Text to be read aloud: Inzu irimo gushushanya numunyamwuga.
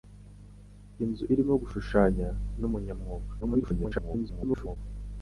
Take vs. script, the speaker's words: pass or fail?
fail